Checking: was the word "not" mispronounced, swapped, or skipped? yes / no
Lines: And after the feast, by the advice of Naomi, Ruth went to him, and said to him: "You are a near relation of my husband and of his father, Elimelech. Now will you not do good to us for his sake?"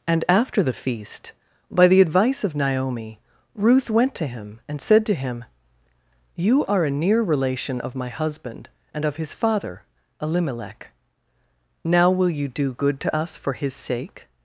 yes